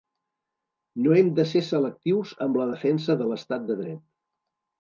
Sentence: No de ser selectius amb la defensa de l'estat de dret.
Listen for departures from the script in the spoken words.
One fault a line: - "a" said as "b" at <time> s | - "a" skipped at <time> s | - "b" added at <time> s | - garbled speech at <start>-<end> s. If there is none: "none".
- "hem" added at 1.2 s